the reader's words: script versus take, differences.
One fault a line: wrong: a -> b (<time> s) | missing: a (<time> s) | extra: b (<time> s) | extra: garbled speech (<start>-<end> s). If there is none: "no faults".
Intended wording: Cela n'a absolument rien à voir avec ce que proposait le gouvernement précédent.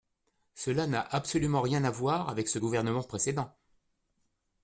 missing: que proposait le (2.6 s)